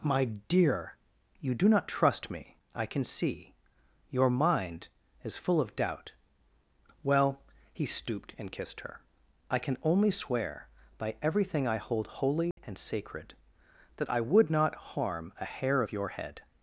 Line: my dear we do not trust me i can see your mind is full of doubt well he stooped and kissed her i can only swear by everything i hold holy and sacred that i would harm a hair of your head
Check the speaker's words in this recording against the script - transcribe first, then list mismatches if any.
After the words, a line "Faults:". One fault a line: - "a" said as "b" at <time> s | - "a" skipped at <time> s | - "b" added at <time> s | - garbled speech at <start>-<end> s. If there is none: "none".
my dear you do not trust me i can see your mind is full of doubt well he stooped and kissed her i can only swear by everything i hold holy and sacred that i would not harm a hair of your head
Faults:
- "we" said as "you" at 1.4 s
- "not" added at 14.5 s